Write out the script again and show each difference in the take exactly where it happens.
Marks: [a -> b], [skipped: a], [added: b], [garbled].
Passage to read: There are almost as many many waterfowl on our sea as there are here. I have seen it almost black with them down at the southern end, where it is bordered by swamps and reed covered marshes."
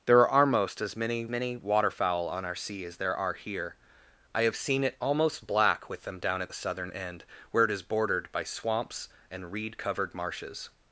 There are almost as many many waterfowl on our sea as there are here. I have seen it almost black with them down at the southern end, where it is bordered by swamps and reed covered marshes."